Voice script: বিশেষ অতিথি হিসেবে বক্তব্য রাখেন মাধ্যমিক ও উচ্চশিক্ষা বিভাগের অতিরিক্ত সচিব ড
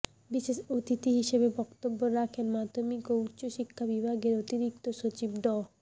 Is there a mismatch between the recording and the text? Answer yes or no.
no